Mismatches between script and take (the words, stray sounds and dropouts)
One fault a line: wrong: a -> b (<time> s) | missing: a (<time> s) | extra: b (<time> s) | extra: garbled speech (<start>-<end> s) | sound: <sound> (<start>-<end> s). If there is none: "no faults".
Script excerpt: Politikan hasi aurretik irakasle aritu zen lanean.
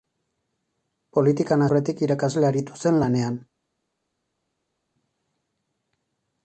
missing: hasi (1.6 s)